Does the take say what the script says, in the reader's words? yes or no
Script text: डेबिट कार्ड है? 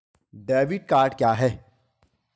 no